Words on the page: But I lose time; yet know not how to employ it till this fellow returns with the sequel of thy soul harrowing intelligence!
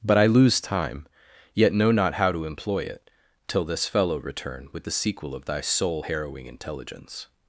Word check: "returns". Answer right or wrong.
wrong